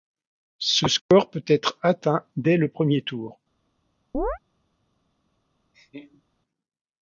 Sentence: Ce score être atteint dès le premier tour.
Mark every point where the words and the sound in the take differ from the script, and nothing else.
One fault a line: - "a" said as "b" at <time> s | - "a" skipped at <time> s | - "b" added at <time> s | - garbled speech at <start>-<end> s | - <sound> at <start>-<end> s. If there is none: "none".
- "peut" added at 1.3 s
- chirp at 4.1-4.4 s
- laugh at 5.7-6.2 s